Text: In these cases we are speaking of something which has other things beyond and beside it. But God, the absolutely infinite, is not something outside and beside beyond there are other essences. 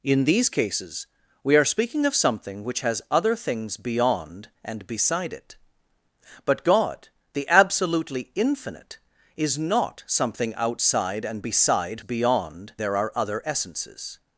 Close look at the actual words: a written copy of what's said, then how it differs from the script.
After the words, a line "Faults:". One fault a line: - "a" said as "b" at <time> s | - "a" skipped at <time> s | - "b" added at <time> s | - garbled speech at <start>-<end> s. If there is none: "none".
In these cases we are speaking of something which has other things beyond and beside it. But God, the absolutely infinite, is not something outside and beside beyond there are other essences.
Faults:
none